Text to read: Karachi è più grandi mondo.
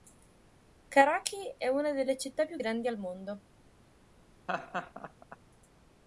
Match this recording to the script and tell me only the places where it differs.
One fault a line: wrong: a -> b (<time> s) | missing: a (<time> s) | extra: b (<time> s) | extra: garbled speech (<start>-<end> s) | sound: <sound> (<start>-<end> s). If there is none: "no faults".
extra: una delle città (1.7 s)
extra: al (2.9 s)
sound: laugh (4.5-5.4 s)